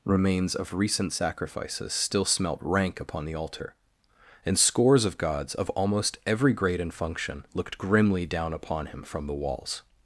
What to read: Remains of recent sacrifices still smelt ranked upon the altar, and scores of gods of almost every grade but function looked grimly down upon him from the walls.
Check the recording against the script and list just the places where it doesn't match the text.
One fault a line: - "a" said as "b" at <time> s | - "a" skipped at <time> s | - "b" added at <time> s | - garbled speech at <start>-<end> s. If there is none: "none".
- "ranked" said as "rank" at 2.6 s
- "but" said as "and" at 6.8 s